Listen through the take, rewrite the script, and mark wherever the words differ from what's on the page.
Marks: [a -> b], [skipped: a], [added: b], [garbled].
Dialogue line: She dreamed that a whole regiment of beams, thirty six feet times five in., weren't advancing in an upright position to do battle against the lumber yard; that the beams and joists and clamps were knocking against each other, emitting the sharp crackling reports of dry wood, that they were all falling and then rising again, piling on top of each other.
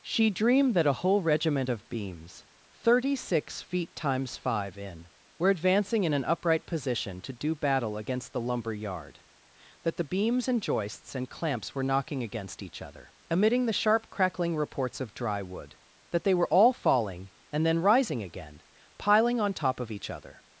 She dreamed that a whole regiment of beams, thirty six feet times five in., [weren't -> were] advancing in an upright position to do battle against the lumber yard; that the beams and joists and clamps were knocking against each other, emitting the sharp crackling reports of dry wood, that they were all falling and then rising again, piling on top of each other.